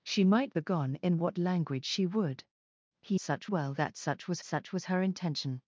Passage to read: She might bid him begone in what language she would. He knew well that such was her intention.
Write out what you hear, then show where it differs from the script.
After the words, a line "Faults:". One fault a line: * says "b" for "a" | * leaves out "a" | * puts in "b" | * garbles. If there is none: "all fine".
She might begone in what language she would. He such well that such was such was her intention.
Faults:
* leaves out "bid him"
* says "such" for "knew"
* puts in "such was"